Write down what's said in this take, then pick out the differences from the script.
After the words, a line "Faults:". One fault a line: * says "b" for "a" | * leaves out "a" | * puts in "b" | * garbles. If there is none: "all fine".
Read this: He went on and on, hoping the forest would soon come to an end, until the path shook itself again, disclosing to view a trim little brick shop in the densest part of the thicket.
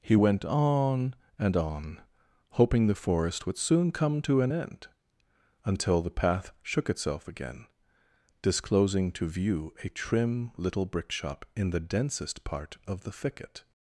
He went on and on, hoping the forest would soon come to an end, until the path shook itself again, disclosing to view a trim little brick shop in the densest part of the thicket.
Faults:
all fine